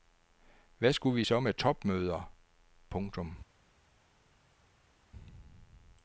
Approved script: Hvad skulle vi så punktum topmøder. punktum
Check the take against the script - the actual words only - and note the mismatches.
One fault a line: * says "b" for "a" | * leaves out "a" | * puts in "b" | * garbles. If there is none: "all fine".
* says "med" for "punktum"